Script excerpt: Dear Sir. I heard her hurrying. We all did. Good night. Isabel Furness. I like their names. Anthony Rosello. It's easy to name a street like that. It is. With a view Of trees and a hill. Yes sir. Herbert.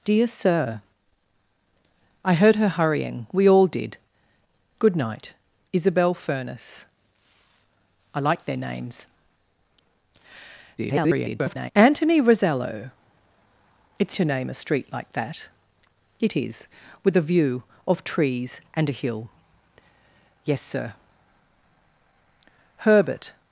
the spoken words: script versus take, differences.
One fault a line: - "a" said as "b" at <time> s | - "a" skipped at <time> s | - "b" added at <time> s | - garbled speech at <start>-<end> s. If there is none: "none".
- garbled speech at 10.8-11.7 s
- "easy" skipped at 14.1 s